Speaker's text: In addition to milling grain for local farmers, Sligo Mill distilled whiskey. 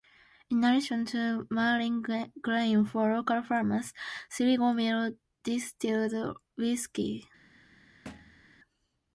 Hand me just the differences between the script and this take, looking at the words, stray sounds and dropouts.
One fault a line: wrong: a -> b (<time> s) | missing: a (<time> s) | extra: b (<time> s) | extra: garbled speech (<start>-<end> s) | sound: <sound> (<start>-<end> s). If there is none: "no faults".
sound: thud (8.1-8.4 s)